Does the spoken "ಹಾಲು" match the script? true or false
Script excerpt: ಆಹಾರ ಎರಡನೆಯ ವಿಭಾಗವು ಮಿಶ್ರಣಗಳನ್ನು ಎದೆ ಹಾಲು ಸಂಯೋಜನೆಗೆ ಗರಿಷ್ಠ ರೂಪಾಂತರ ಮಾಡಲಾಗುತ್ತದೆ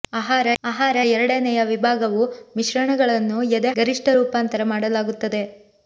false